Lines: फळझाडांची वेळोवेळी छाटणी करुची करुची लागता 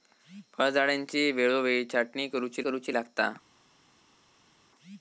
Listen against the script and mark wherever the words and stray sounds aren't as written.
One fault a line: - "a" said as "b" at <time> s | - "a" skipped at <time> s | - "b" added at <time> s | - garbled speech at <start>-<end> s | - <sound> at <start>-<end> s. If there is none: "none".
none